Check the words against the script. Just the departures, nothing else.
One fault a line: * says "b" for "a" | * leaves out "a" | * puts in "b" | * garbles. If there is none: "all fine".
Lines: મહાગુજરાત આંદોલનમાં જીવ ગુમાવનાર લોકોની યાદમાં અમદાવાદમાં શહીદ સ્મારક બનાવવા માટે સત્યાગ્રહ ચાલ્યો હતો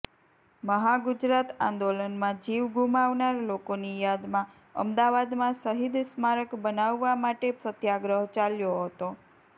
all fine